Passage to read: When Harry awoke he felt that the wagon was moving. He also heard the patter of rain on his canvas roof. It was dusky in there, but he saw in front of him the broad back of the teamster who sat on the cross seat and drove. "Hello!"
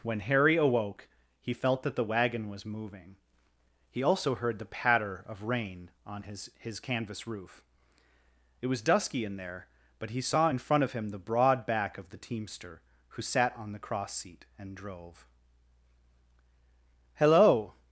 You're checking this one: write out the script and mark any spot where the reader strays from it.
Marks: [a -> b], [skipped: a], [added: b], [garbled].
When Harry awoke he felt that the wagon was moving. He also heard the patter of rain on his [added: his] canvas roof. It was dusky in there, but he saw in front of him the broad back of the teamster who sat on the cross seat and drove. "Hello!"